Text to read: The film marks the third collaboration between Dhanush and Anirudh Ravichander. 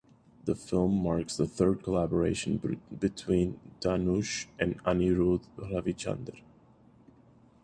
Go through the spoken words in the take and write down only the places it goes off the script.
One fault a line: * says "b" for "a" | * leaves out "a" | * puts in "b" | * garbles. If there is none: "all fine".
all fine